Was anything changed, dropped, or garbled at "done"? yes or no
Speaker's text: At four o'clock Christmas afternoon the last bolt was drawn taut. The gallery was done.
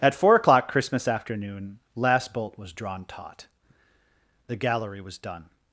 no